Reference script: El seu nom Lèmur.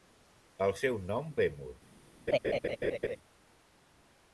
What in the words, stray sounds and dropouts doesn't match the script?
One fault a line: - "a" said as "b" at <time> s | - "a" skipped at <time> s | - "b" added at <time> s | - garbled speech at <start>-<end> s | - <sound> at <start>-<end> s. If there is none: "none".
- laugh at 2.3-3.2 s